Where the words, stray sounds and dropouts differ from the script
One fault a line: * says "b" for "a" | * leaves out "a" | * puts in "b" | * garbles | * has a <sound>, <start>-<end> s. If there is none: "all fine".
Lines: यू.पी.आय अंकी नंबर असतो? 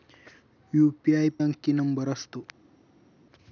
all fine